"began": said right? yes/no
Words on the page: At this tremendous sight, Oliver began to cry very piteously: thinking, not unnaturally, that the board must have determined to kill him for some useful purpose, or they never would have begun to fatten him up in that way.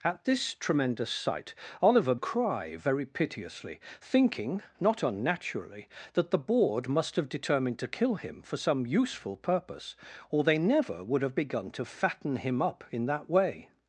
no